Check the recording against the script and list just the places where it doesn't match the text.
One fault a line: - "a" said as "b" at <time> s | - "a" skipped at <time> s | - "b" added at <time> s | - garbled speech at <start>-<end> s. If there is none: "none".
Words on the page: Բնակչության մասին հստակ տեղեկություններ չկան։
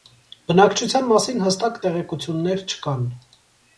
none